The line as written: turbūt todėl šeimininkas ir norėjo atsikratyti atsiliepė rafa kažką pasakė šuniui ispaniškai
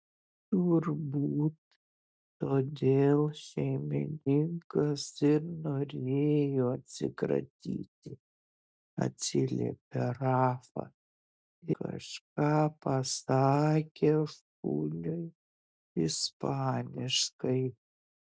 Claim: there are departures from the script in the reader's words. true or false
false